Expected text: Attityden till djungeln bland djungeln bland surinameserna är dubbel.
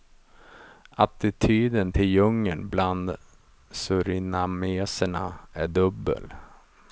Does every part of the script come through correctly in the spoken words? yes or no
no